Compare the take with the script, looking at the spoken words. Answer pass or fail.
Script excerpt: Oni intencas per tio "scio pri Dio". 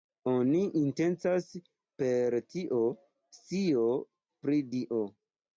pass